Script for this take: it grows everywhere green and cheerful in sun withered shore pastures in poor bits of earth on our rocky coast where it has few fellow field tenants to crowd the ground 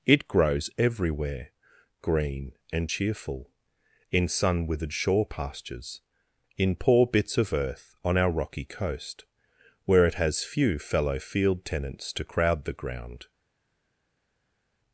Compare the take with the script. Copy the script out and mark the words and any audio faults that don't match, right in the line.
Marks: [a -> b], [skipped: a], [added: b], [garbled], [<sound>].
it grows everywhere green and cheerful in sun withered shore pastures in poor bits of earth on our rocky coast where it has few fellow field tenants to crowd the ground